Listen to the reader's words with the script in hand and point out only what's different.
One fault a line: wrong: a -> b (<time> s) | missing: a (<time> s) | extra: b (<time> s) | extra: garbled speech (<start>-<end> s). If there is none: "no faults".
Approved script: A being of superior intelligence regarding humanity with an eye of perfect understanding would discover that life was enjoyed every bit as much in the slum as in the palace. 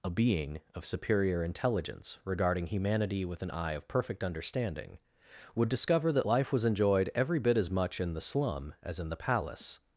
no faults